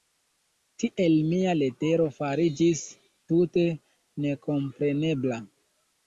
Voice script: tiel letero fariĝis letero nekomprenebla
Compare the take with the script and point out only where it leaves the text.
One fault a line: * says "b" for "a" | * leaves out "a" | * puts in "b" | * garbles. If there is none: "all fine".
* puts in "mia"
* says "tute" for "letero"